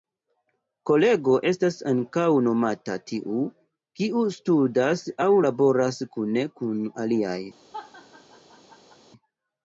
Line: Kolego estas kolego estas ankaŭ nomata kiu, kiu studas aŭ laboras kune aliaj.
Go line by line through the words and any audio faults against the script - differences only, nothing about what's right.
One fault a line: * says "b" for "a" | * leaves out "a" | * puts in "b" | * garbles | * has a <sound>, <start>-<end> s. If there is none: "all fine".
* leaves out "kolego estas"
* says "tiu" for "kiu"
* puts in "kun"
* has a laugh, 7.7-9.0 s